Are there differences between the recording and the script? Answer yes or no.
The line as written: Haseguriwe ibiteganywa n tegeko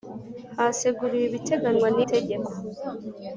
no